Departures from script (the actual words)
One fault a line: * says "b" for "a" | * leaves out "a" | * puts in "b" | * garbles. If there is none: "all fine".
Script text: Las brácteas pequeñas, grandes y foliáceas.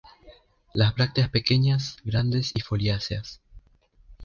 all fine